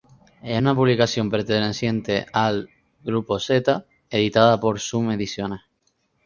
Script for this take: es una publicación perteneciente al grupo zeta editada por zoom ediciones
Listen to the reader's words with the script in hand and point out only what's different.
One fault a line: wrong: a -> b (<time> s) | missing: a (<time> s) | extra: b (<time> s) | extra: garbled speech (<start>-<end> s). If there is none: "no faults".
no faults